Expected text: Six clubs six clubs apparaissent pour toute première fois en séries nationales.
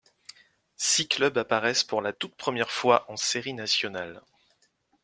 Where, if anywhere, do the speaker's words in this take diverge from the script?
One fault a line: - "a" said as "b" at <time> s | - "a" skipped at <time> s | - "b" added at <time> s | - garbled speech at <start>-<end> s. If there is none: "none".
- "six clubs" skipped at 1.4 s
- "la" added at 2.0 s